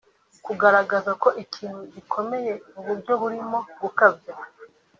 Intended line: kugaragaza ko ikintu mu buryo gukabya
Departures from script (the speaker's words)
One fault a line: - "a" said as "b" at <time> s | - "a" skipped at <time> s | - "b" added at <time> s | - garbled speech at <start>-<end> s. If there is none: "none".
- "gikomeye" added at 1.9 s
- "burimo" added at 3.2 s